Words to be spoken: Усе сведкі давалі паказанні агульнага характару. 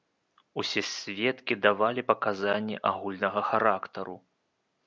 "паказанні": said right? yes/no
yes